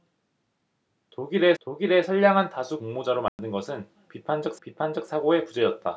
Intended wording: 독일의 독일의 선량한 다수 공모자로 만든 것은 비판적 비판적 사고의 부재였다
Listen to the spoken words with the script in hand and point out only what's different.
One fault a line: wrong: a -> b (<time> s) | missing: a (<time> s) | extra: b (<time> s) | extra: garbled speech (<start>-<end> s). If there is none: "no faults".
no faults